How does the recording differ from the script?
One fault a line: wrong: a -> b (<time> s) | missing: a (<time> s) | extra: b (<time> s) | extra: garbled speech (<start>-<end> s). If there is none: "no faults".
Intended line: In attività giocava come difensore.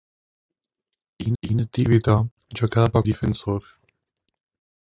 extra: in (1.4 s)
missing: come (3.0 s)